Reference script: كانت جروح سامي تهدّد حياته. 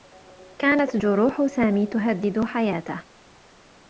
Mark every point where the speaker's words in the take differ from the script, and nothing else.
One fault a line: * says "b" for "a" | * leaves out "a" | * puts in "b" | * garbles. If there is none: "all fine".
all fine